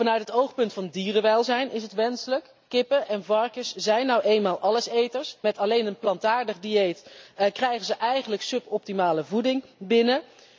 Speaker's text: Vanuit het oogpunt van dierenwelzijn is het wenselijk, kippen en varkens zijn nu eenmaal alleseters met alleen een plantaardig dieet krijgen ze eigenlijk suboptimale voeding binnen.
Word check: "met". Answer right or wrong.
right